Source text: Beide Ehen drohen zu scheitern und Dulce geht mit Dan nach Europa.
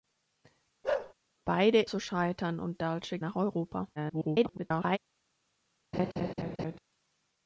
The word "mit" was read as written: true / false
false